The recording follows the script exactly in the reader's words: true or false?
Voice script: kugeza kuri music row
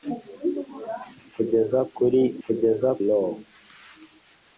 false